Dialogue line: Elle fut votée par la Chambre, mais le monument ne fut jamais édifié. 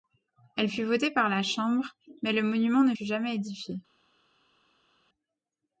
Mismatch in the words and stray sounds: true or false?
false